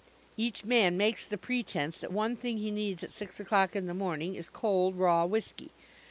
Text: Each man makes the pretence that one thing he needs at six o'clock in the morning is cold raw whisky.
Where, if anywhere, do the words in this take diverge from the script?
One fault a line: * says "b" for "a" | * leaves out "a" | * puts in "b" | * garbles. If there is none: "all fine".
all fine